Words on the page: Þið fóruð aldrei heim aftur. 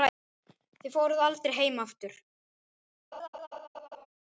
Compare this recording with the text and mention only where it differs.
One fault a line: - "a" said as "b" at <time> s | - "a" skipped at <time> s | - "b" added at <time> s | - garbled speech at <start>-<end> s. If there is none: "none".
none